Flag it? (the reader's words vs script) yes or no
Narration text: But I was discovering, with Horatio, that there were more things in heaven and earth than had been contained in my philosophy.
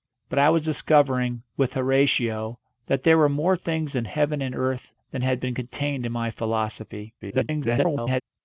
yes